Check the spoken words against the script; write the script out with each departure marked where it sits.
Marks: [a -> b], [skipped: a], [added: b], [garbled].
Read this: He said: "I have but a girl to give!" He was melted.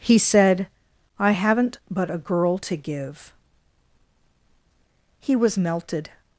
He said: "I [have -> haven't] but a girl to give!" He was melted.